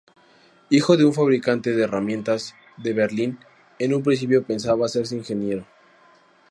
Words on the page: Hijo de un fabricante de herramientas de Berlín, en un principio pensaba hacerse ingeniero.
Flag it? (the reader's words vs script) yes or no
no